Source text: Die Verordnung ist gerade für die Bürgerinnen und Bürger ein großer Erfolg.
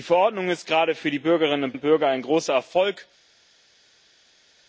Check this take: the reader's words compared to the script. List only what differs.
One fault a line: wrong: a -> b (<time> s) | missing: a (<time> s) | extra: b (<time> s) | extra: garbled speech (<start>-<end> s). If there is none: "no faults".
extra: und (1.7 s)